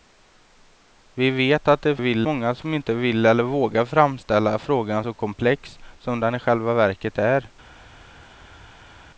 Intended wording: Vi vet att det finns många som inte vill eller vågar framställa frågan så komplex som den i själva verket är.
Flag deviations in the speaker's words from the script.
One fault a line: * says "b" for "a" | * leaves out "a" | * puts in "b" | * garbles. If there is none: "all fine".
* says "vill" for "finns"